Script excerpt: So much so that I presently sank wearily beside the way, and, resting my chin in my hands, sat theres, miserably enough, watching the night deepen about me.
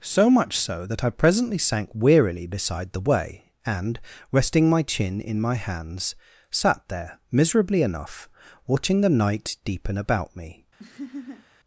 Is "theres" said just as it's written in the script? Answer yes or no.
no